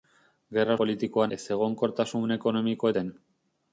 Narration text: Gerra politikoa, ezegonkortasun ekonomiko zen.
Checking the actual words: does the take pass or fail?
pass